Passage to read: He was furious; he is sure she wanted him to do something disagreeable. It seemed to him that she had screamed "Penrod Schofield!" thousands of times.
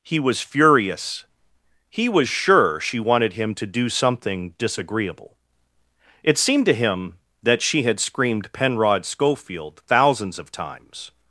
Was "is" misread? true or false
true